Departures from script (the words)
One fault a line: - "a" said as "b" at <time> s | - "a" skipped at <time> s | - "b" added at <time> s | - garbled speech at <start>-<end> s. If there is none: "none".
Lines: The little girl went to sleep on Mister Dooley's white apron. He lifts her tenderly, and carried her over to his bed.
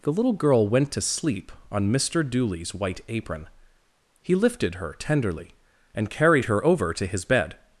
- "lifts" said as "lifted" at 4.3 s